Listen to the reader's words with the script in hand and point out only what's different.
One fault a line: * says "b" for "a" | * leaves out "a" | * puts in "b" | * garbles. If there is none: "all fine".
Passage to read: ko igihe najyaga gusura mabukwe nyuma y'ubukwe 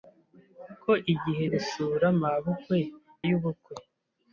* leaves out "najyaga"
* leaves out "nyuma"